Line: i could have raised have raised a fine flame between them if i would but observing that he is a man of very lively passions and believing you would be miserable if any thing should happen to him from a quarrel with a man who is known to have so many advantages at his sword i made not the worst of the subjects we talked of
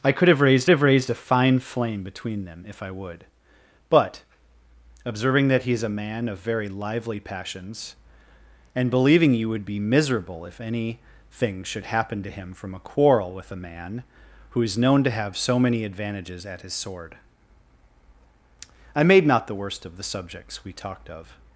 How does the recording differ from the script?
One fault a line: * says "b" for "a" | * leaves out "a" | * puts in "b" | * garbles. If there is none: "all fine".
all fine